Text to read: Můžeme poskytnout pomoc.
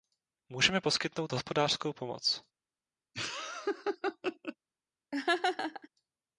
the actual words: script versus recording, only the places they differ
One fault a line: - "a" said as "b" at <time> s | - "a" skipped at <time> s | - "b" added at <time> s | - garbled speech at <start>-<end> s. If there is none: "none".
- "hospodářskou" added at 1.3 s